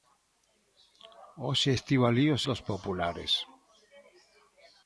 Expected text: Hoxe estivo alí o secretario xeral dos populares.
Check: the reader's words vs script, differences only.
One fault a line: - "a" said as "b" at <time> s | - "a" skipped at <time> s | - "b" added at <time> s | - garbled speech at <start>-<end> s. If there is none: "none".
- "secretario xeral" skipped at 2.4 s